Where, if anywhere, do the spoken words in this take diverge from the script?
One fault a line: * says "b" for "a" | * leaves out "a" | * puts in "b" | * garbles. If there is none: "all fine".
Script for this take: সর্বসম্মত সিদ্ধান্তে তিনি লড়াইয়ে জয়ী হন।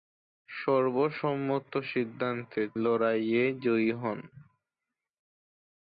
* leaves out "তিনি"